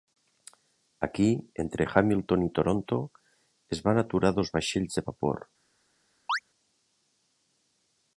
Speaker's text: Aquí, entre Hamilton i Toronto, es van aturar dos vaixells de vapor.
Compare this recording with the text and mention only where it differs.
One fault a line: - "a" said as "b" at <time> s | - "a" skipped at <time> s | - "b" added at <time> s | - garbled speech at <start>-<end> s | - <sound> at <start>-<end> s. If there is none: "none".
- chirp at 6.3-6.4 s